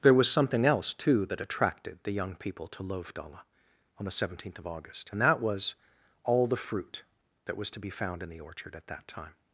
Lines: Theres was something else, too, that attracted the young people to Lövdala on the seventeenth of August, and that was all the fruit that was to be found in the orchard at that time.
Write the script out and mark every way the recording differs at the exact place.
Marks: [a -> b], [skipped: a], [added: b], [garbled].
[Theres -> There] was something else, too, that attracted the young people to Lövdala on the seventeenth of August, and that was all the fruit that was to be found in the orchard at that time.